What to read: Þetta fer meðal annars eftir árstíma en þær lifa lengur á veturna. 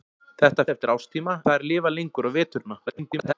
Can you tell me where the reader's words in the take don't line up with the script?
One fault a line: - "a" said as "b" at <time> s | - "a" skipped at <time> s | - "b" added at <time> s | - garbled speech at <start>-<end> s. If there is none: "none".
- "fer meðal annars" skipped at 0.6 s
- "en" skipped at 1.4 s
- garbled speech at 2.9-3.3 s